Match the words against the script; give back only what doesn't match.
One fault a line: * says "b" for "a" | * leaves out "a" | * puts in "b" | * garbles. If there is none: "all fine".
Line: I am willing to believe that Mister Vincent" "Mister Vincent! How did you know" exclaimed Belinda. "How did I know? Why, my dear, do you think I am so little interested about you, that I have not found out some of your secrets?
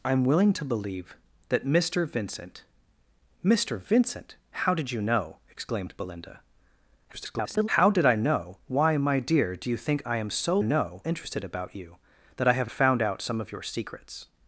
* garbles
* says "know" for "little"
* leaves out "not"